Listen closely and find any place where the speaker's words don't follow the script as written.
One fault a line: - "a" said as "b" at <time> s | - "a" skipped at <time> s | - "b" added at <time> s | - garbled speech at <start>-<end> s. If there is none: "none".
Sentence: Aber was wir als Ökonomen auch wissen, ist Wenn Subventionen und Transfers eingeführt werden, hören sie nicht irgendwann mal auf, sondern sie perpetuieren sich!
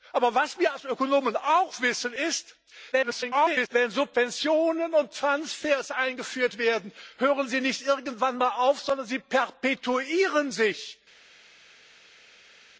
- garbled speech at 2.9-3.7 s